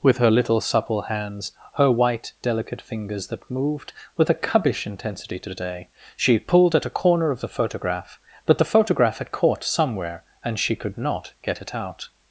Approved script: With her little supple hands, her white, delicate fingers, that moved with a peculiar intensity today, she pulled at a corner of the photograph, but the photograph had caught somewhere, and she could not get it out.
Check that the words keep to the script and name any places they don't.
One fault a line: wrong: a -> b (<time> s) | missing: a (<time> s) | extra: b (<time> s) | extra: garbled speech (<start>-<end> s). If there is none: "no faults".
wrong: peculiar -> cubbish (4.4 s)